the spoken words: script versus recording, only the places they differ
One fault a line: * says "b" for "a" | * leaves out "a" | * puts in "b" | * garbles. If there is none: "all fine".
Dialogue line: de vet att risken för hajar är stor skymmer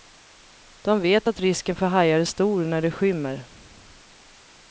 * puts in "när det"